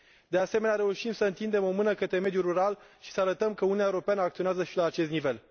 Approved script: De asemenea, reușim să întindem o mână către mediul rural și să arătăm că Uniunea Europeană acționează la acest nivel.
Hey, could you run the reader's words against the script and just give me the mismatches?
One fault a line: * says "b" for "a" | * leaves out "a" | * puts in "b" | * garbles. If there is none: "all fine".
* puts in "și"